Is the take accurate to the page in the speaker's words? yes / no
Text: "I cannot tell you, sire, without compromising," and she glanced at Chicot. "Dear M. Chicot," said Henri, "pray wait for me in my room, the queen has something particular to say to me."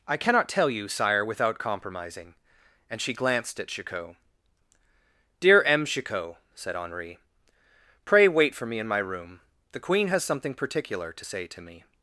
yes